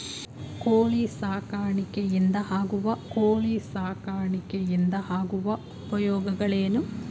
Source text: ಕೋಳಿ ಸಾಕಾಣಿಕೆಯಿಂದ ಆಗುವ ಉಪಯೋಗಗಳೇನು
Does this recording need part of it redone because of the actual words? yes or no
yes